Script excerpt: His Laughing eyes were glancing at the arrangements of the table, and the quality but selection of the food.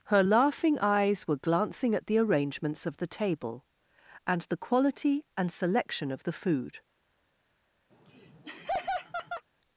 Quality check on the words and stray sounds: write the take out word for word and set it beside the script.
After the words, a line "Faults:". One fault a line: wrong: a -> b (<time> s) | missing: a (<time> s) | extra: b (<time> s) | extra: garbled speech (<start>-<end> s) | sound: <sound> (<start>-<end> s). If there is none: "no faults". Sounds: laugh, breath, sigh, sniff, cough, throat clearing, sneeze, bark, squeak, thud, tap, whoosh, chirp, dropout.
Her Laughing eyes were glancing at the arrangements of the table, and the quality and selection of the food.
Faults:
wrong: His -> Her (0.1 s)
wrong: but -> and (5.4 s)
sound: laugh (7.9-9.5 s)